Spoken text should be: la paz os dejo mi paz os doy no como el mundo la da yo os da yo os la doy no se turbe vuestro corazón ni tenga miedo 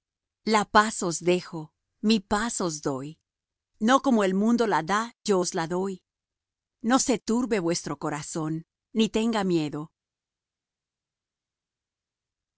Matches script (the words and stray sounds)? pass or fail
fail